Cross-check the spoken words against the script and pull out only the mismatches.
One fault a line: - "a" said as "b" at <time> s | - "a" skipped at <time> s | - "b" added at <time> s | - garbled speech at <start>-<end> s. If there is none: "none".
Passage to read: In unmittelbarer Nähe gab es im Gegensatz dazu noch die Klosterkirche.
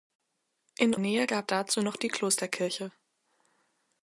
- "unmittelbarer" skipped at 0.9 s
- "es im Gegensatz" skipped at 1.5 s